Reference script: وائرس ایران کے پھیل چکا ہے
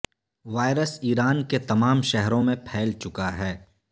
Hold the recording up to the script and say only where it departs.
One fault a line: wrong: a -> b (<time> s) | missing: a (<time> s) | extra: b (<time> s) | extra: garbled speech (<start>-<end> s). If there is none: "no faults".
extra: تمام شہروں میں (1.6 s)